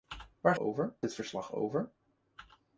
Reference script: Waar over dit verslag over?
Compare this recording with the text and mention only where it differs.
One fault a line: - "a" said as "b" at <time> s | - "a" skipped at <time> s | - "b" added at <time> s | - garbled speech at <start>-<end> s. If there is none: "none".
none